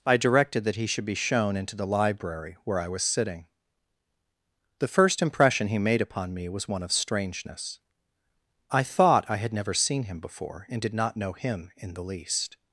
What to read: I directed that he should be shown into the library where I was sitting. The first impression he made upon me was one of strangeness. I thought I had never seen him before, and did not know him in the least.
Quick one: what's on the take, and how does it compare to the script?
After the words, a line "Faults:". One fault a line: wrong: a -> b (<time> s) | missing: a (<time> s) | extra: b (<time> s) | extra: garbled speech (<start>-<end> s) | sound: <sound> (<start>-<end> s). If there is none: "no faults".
I directed that he should be shown into the library where I was sitting. The first impression he made upon me was one of strangeness. I thought I had never seen him before, and did not know him in the least.
Faults:
no faults